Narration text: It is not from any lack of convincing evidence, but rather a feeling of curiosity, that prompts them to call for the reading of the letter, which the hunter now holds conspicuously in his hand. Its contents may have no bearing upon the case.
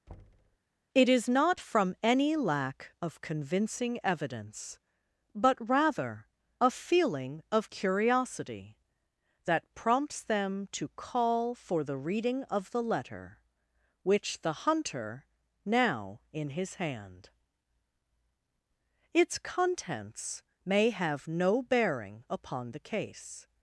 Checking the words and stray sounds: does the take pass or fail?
fail